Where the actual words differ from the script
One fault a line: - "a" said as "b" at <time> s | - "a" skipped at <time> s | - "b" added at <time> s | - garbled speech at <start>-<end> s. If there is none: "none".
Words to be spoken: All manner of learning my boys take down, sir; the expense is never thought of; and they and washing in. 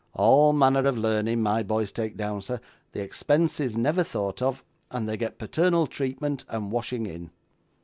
- "get paternal treatment" added at 5.2 s